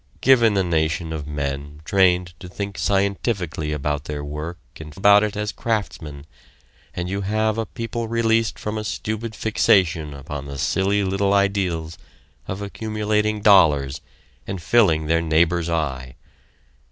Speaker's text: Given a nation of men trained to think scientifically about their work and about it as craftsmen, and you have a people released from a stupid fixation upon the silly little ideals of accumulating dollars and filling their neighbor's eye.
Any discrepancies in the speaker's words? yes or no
no